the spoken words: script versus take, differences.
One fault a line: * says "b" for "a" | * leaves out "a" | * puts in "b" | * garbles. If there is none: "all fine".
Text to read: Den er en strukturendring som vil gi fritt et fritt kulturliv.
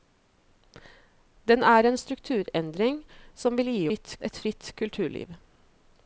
all fine